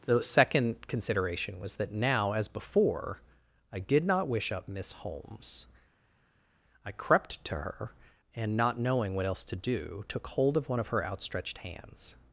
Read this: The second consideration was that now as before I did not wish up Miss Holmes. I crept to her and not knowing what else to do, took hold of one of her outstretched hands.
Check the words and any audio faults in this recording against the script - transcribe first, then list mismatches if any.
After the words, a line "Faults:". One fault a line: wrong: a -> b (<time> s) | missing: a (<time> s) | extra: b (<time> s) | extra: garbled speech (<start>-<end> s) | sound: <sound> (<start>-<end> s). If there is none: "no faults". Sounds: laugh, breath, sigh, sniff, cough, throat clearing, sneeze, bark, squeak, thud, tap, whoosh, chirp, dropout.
The second consideration was that now as before I did not wish up Miss Holmes. I crept to her and not knowing what else to do, took hold of one of her outstretched hands.
Faults:
no faults